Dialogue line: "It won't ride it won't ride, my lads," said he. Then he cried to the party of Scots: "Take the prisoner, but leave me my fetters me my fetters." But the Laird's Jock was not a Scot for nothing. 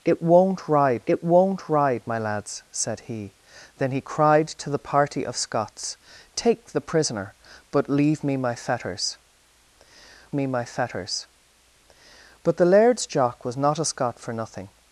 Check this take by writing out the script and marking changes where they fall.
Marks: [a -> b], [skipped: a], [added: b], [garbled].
"It won't ride it won't ride, my lads," said he. Then he cried to the party of Scots: "Take the prisoner, but leave me my fetters me my fetters." But the Laird's Jock was not a Scot for nothing.